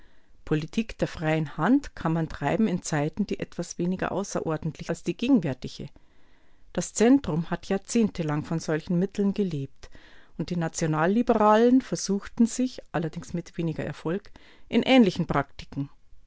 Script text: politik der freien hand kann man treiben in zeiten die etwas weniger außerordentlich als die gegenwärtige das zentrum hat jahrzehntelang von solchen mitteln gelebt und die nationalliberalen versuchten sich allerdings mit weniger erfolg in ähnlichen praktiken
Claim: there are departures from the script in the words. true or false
false